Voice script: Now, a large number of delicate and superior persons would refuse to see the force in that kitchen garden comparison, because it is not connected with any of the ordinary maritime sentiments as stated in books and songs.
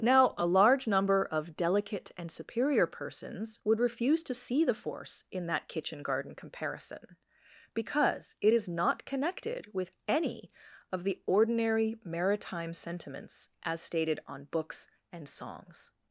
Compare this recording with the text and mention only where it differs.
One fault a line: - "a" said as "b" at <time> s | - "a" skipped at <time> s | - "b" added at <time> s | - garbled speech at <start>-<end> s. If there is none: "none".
- "in" said as "on" at 14.3 s